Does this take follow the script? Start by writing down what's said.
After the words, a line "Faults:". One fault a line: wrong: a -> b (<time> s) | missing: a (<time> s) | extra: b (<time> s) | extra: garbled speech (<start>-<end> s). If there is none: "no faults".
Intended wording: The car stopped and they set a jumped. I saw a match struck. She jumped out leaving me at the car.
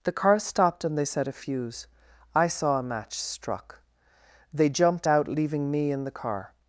The car stopped and they set a fuse. I saw a match struck. They jumped out leaving me in the car.
Faults:
wrong: jumped -> fuse (1.3 s)
wrong: She -> They (4.5 s)
wrong: at -> in (5.9 s)